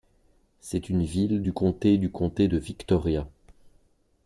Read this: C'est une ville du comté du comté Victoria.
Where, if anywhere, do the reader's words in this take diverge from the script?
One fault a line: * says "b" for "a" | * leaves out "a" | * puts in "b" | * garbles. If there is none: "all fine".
* puts in "de"